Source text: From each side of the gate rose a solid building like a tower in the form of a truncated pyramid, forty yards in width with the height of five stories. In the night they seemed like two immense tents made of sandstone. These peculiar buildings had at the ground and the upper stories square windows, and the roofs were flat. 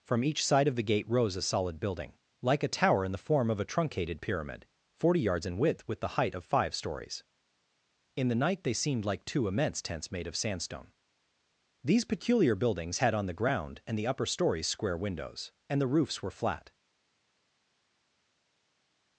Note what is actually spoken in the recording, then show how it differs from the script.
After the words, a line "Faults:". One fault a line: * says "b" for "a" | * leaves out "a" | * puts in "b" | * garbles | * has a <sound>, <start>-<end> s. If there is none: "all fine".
From each side of the gate rose a solid building like a tower in the form of a truncated pyramid, forty yards in width with the height of five stories. In the night they seemed like two immense tents made of sandstone. These peculiar buildings had on the ground and the upper stories square windows, and the roofs were flat.
Faults:
* says "on" for "at"